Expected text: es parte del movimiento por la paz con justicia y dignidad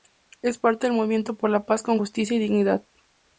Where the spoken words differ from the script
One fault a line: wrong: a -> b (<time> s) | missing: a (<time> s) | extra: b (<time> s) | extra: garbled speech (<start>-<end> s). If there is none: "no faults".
no faults